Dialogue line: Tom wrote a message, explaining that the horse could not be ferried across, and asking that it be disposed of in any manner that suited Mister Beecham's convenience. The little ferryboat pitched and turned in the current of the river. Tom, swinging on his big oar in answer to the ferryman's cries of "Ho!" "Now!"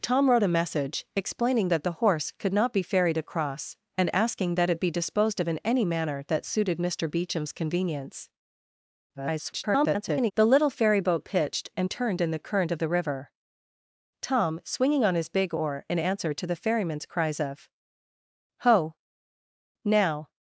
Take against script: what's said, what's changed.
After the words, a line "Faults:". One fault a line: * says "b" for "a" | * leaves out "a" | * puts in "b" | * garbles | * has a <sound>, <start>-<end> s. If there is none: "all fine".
Tom wrote a message, explaining that the horse could not be ferried across, and asking that it be disposed of in any manner that suited Mister Beecham's convenience. [garbled] The little ferryboat pitched and turned in the current of the river. Tom, swinging on his big oar in answer to the ferryman's cries of "Ho!" "Now!"
Faults:
* garbles